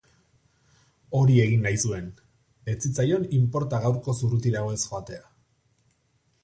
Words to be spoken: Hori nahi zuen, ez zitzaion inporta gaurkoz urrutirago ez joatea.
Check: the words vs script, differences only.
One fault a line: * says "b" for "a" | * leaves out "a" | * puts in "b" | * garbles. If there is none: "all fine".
* puts in "egin"